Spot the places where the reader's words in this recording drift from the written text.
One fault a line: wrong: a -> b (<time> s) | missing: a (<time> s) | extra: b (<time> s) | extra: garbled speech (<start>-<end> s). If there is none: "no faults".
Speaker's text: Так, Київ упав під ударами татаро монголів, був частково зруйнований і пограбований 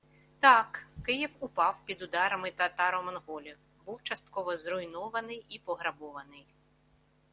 no faults